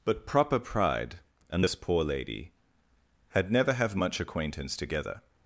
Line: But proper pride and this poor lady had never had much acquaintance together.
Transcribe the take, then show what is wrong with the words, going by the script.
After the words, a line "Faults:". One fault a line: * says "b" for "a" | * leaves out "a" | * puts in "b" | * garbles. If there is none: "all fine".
But proper pride and this poor lady had never have much acquaintance together.
Faults:
* says "have" for "had"